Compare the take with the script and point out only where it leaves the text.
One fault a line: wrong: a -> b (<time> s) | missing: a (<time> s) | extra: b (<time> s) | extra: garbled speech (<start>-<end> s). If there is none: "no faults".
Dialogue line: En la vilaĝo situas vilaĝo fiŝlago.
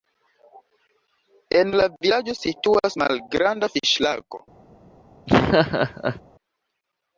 wrong: vilaĝo -> malgranda (3.0 s)